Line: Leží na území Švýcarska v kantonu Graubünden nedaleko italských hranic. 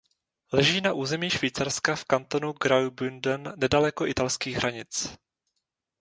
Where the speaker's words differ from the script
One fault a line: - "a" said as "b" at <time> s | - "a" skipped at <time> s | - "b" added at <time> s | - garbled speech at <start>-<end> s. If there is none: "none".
none